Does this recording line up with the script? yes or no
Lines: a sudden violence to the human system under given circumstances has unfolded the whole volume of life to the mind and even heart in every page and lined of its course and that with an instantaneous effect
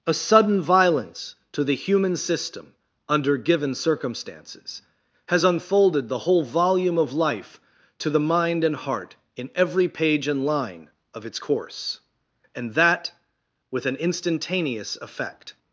no